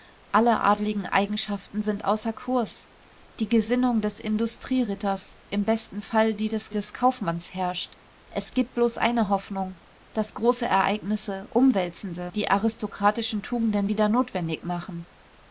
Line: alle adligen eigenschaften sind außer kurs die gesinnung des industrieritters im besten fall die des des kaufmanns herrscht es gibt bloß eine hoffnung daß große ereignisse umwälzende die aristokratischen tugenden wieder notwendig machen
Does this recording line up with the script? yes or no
yes